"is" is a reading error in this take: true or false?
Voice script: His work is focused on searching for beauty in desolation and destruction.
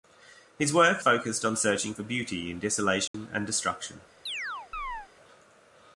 true